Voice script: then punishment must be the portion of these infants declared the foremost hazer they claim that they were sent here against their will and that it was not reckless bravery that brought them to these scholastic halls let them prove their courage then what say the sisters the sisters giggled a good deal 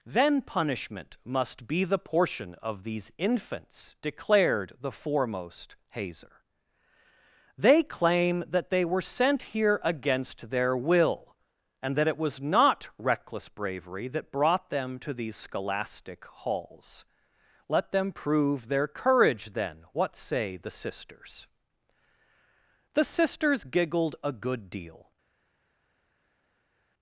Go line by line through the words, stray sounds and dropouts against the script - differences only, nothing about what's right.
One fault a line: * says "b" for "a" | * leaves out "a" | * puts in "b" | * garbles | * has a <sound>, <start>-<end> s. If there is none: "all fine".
all fine